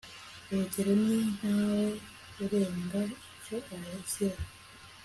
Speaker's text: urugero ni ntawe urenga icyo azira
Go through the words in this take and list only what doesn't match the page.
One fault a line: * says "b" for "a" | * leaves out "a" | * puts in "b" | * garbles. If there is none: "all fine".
all fine